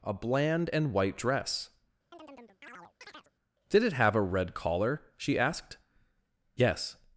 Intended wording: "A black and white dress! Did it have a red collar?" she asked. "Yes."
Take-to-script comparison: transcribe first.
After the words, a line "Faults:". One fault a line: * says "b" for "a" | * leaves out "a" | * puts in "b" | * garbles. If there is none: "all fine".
"A bland and white dress! Did it have a red collar?" she asked. "Yes."
Faults:
* says "bland" for "black"